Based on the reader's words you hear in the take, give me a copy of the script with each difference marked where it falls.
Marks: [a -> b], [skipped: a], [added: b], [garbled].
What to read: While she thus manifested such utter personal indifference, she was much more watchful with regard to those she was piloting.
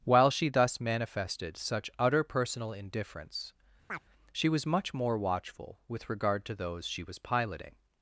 While she thus manifested such utter personal indifference, she was much more watchful with regard to those she was piloting.